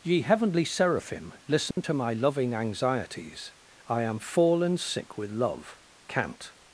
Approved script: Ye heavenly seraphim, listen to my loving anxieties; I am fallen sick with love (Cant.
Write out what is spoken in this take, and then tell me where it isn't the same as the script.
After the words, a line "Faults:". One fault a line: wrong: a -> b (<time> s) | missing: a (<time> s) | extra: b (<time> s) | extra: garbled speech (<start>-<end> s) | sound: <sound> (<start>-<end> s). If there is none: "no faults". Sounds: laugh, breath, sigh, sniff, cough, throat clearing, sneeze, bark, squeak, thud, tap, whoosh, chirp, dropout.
Ye heavenly seraphim, listen to my loving anxieties; I am fallen sick with love (Cant.
Faults:
sound: dropout (1.7-1.8 s)